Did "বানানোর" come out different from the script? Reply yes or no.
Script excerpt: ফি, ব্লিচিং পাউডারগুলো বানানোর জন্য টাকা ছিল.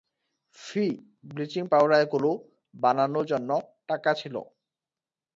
no